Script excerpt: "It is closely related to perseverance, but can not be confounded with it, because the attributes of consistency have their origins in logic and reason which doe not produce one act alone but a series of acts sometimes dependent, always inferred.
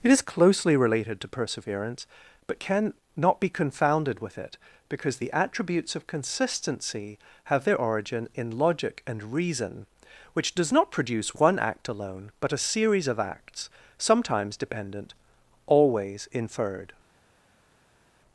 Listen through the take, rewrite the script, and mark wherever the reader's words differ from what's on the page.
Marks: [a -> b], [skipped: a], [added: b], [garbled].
"It is closely related to perseverance, but can not be confounded with it, because the attributes of consistency have their [origins -> origin] in logic and reason which [doe -> does] not produce one act alone but a series of acts sometimes dependent, always inferred.